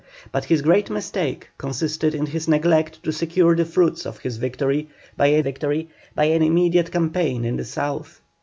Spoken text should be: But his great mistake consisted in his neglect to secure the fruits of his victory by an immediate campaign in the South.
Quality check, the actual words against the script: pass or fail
fail